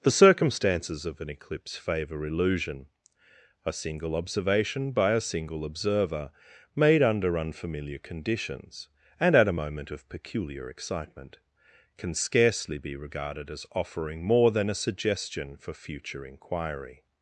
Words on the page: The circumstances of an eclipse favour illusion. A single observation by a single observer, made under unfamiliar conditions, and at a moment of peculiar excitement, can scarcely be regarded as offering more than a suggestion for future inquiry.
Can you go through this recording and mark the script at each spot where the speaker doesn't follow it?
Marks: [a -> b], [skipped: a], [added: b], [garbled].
The circumstances of an eclipse favour illusion. A single observation by a single observer, made under unfamiliar conditions, and at a moment of peculiar excitement, can scarcely be regarded as offering more than a suggestion for future inquiry.